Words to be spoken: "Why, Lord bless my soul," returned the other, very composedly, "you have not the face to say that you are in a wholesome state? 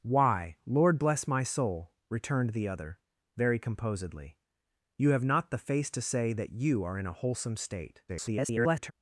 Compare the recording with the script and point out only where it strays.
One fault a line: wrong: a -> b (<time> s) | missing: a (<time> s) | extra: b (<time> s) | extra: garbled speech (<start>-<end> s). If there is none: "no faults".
extra: garbled speech (8.1-8.9 s)